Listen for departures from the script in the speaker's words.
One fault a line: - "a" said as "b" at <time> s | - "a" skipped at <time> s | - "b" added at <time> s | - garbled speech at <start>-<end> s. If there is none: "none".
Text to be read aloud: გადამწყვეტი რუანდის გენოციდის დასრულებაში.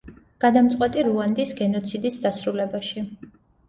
none